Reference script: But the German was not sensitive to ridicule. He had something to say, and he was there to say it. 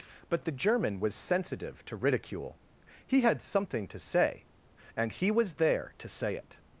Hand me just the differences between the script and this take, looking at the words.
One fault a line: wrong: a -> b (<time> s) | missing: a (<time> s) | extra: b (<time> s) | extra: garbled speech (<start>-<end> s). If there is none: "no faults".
missing: not (1.1 s)